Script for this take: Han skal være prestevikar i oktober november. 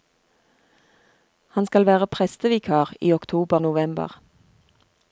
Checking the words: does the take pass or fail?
pass